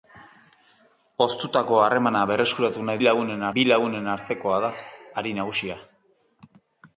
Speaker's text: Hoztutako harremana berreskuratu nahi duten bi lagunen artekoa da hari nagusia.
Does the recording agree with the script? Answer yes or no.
no